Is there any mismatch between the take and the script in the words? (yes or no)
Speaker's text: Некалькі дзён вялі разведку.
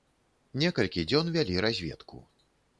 no